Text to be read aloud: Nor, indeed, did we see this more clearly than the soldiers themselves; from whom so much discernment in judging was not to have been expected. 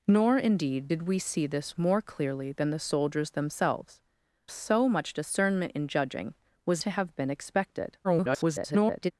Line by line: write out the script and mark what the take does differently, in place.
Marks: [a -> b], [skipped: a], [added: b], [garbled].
Nor, indeed, did we see this more clearly than the soldiers themselves; [skipped: from whom] so much discernment in judging was [skipped: not] to have been expected. [garbled]